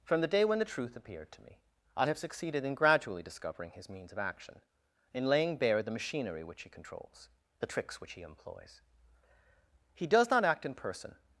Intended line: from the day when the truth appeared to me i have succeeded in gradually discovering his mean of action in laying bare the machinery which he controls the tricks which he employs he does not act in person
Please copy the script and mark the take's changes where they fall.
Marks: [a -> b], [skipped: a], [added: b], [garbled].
from the day when the truth appeared to me i have succeeded in gradually discovering his [mean -> means] of action in laying bare the machinery which he controls the tricks which he employs he does not act in person